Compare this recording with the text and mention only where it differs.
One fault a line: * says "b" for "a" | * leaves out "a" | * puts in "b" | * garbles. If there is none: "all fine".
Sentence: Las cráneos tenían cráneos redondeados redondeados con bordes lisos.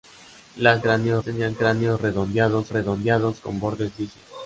all fine